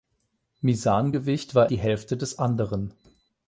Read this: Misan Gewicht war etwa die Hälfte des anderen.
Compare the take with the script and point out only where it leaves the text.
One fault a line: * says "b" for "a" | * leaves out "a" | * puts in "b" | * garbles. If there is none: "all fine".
* leaves out "etwa"